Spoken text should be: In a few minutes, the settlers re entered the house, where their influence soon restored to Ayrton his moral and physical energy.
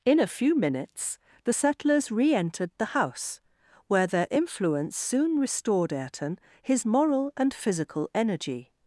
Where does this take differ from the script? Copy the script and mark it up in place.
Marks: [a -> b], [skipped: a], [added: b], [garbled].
In a few minutes, the settlers re entered the house, where their influence soon restored [skipped: to] Ayrton his moral and physical energy.